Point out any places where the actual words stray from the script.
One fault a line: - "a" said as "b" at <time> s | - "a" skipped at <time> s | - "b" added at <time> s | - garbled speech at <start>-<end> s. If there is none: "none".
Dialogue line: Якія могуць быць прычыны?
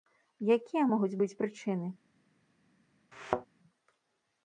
none